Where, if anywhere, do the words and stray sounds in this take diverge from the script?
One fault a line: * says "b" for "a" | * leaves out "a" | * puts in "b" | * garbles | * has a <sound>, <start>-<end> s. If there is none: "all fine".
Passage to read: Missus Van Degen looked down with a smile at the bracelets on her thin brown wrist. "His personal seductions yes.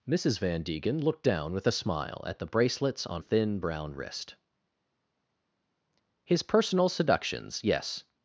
* leaves out "her"